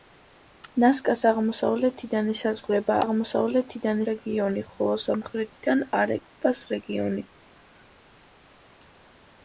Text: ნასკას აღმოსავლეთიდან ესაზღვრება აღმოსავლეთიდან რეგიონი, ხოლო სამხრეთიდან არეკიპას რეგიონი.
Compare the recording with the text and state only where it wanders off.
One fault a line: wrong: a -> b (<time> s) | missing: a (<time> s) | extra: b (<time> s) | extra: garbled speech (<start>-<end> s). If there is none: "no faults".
no faults